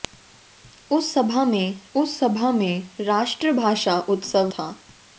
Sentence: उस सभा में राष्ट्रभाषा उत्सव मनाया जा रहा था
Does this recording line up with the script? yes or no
no